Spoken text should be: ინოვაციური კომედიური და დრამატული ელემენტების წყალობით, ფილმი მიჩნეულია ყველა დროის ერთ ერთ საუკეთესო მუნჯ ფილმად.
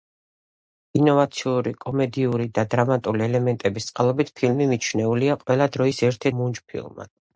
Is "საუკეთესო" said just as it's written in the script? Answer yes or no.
no